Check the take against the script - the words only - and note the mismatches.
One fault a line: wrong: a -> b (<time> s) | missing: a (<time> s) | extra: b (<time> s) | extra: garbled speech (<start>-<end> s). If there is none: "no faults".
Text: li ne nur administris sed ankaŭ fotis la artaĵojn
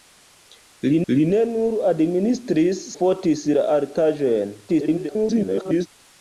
extra: li (1.1 s)
missing: sed ankaŭ (2.8 s)
extra: garbled speech (4.7-5.9 s)